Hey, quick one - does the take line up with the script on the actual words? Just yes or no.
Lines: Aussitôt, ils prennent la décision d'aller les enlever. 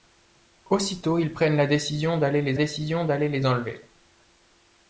no